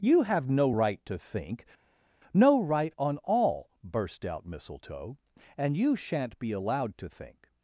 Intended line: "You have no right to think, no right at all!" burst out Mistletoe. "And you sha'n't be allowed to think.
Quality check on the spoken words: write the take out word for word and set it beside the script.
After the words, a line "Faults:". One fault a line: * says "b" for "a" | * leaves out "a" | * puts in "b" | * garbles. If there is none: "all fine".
"You have no right to think, no right on all!" burst out Mistletoe. "And you sha'n't be allowed to think.
Faults:
* says "on" for "at"